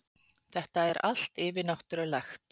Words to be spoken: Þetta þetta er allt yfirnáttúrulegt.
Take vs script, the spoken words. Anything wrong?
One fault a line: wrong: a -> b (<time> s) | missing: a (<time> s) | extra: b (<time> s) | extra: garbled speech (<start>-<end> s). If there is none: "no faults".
missing: þetta (0.8 s)